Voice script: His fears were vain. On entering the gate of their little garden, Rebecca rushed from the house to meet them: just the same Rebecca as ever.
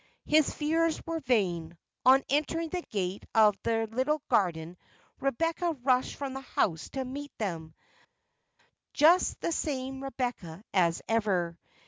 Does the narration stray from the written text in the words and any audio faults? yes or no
no